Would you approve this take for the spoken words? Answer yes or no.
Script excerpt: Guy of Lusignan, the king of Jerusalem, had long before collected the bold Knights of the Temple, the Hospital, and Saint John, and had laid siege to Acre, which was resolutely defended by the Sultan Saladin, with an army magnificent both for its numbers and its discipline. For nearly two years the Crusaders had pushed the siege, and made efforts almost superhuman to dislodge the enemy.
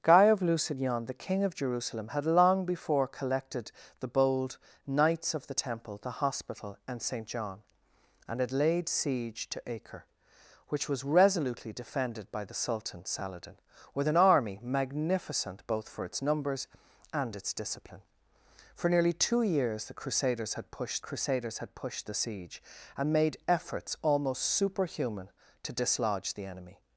no